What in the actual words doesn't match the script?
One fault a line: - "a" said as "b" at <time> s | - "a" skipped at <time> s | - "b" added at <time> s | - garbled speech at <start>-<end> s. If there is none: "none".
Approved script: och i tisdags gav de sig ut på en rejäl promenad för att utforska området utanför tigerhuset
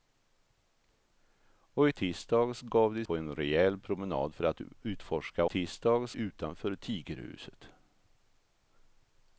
- "sig ut" skipped at 3.1 s
- "området" said as "tisdags" at 5.4 s